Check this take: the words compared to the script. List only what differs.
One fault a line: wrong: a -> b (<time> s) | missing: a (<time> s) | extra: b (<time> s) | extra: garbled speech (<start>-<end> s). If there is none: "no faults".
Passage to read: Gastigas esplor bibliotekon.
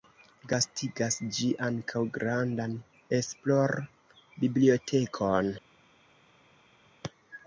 extra: ĝi ankaŭ grandan (1.4 s)